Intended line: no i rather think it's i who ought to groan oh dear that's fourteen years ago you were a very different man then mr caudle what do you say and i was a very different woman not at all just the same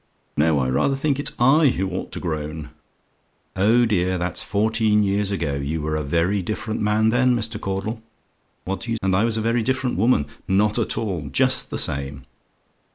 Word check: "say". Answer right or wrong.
wrong